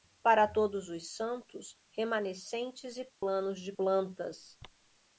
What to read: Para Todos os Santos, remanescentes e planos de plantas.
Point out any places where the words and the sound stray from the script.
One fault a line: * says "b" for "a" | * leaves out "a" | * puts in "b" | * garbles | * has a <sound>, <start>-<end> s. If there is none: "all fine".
* has a dropout, 3.1-3.2 s